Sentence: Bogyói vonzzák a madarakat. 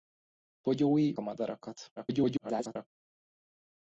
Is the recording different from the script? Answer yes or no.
yes